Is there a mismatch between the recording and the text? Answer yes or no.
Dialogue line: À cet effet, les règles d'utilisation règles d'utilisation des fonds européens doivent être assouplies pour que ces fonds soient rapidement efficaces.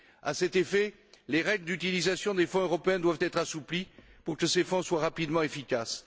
yes